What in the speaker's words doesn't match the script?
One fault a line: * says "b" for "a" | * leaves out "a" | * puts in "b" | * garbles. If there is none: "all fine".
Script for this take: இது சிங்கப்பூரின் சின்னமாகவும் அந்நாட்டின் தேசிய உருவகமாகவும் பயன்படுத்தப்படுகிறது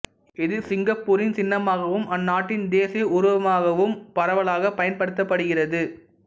* puts in "பரவலாகப்"